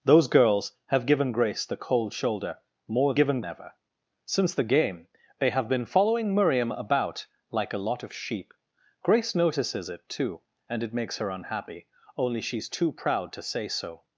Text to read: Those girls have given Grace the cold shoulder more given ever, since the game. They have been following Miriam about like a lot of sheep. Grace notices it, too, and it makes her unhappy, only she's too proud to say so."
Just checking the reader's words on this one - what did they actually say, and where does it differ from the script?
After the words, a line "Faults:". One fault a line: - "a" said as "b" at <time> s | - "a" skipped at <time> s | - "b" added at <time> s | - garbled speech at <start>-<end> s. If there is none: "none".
Those girls have given Grace the cold shoulder more given ever, since the game. They have been following Miriam about like a lot of sheep. Grace notices it, too, and it makes her unhappy, only she's too proud to say so."
Faults:
none